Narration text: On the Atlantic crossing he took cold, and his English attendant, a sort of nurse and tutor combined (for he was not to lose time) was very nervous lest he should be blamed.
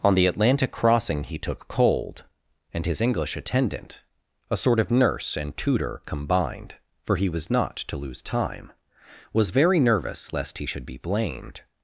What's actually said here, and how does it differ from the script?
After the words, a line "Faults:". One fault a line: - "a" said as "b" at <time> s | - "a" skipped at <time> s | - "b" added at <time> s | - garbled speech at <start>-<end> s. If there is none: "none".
On the Atlantic crossing he took cold, and his English attendant, a sort of nurse and tutor combined (for he was not to lose time) was very nervous lest he should be blamed.
Faults:
none